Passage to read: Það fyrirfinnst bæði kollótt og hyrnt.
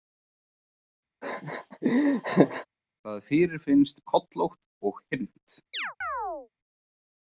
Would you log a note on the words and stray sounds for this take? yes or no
yes